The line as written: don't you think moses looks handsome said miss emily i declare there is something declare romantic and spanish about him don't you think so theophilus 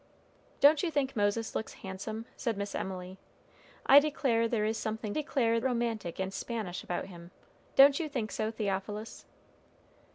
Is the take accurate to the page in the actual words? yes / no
yes